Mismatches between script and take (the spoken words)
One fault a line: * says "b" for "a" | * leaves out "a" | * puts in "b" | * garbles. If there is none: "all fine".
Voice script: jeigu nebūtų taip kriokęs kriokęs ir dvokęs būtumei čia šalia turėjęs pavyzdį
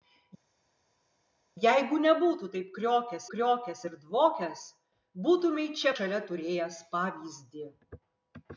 all fine